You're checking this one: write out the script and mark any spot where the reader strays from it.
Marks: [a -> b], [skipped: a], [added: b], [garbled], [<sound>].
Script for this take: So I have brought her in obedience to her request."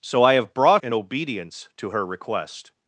So I have brought [skipped: her] in obedience to her request."